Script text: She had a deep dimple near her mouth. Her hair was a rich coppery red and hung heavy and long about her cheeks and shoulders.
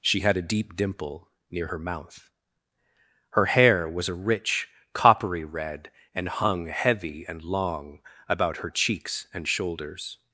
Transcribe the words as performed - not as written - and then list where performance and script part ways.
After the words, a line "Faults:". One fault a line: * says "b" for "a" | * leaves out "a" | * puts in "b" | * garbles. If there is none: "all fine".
She had a deep dimple near her mouth. Her hair was a rich coppery red and hung heavy and long about her cheeks and shoulders.
Faults:
all fine